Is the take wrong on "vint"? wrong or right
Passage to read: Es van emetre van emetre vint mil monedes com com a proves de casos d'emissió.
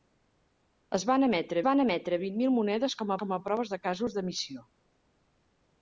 right